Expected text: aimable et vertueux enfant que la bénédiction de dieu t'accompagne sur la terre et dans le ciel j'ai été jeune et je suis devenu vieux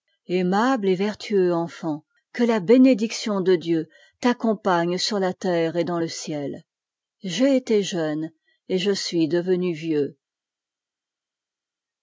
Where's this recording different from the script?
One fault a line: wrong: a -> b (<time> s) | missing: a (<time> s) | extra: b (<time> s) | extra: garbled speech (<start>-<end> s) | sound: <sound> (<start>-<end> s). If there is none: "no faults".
no faults